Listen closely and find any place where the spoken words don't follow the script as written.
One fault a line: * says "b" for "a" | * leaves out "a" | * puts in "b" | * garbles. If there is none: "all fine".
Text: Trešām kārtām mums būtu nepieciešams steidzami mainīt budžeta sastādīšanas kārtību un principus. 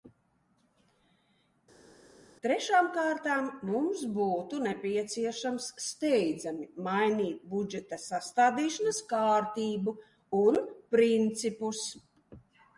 all fine